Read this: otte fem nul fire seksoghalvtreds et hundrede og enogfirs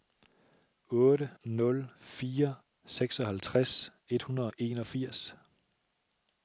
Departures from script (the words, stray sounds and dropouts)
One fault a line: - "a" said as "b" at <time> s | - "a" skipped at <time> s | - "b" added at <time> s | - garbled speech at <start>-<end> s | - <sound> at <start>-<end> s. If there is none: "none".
- "fem" skipped at 1.3 s